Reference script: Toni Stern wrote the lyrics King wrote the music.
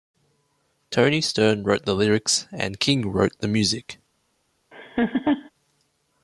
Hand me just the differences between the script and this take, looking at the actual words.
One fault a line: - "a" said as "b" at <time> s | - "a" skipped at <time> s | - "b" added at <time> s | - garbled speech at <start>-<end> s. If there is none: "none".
- "and" added at 2.5 s